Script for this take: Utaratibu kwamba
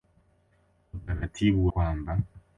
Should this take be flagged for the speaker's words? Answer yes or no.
no